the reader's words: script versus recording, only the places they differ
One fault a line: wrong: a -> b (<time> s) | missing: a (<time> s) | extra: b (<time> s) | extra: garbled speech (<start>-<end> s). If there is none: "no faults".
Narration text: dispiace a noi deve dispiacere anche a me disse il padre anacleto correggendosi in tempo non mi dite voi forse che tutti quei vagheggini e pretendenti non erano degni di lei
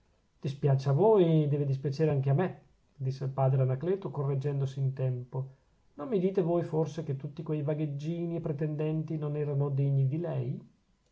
wrong: noi -> voi (0.9 s)